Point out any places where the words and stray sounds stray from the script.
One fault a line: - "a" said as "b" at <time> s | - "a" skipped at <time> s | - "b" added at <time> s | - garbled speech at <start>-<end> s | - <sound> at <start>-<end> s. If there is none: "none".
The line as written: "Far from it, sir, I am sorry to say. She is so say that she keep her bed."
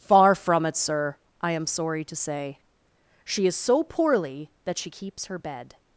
- "say" said as "poorly" at 3.8 s
- "keep" said as "keeps" at 4.9 s